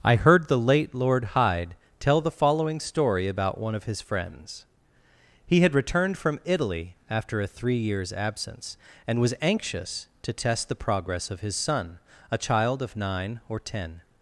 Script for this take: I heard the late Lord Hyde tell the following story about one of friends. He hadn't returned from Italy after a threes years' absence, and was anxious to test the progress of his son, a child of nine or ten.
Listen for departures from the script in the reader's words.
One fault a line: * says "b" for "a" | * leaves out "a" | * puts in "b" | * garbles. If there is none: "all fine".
* puts in "his"
* says "had" for "hadn't"
* says "three" for "threes"